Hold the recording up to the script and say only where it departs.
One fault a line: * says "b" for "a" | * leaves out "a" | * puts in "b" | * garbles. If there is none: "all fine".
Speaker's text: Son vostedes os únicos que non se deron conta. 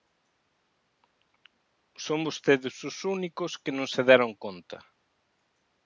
all fine